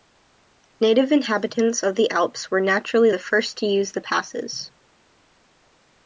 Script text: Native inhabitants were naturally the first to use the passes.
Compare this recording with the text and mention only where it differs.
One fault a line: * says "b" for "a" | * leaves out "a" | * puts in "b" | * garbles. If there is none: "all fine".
* puts in "of the Alps"